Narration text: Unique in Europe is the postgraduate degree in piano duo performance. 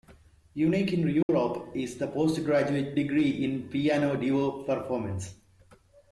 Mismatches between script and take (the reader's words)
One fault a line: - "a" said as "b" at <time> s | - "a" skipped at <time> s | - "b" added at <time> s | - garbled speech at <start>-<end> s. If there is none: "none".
none